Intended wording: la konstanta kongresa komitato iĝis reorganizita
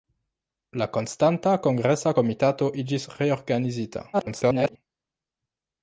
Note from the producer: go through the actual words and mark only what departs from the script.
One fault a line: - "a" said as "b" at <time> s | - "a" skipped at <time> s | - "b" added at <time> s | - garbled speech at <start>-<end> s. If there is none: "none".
- garbled speech at 4.1-4.8 s